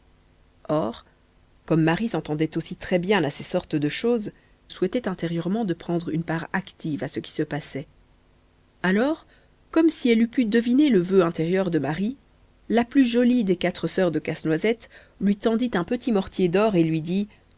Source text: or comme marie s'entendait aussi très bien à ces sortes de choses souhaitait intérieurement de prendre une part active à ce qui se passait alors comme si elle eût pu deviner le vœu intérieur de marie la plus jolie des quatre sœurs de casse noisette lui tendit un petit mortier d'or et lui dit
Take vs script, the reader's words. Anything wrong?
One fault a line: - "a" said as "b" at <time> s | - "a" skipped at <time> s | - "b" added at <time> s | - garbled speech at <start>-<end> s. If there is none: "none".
none